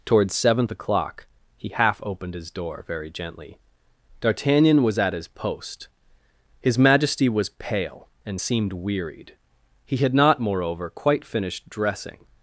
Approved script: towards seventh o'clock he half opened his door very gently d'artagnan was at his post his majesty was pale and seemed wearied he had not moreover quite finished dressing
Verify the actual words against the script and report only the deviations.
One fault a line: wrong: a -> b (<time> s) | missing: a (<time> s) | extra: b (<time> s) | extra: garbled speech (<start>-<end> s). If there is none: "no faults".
no faults